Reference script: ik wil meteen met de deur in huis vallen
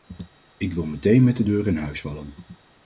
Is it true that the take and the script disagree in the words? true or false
false